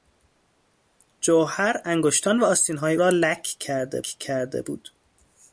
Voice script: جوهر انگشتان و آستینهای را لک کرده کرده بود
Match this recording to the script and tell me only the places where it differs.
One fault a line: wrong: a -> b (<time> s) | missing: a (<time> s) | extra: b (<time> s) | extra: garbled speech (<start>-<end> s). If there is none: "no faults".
no faults